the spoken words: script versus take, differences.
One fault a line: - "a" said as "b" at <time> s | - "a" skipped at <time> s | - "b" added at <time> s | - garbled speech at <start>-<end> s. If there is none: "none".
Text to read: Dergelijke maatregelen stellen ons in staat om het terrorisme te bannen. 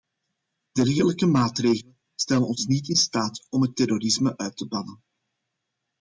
- "niet" added at 2.7 s
- "uit" added at 4.4 s